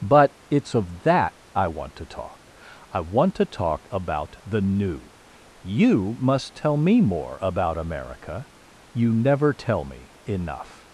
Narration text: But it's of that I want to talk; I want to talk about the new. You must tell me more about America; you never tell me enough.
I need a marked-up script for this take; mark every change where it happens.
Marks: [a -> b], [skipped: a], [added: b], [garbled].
But it's of that I want to talk; I want to talk about the new. You must tell me more about America; you never tell me enough.